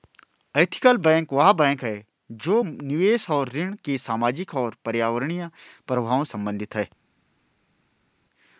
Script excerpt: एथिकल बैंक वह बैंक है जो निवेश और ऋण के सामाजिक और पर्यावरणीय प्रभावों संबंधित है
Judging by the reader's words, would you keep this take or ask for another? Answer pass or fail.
pass